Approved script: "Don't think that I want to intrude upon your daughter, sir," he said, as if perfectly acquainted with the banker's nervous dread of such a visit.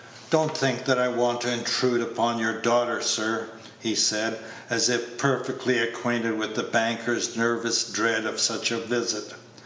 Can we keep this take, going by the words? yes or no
yes